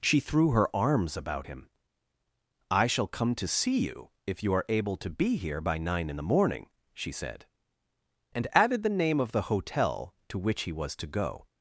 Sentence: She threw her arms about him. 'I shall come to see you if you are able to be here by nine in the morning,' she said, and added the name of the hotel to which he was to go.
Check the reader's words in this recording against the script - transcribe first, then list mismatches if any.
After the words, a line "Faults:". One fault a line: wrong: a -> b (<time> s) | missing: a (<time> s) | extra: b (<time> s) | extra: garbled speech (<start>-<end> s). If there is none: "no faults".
She threw her arms about him. 'I shall come to see you if you are able to be here by nine in the morning,' she said, and added the name of the hotel to which he was to go.
Faults:
no faults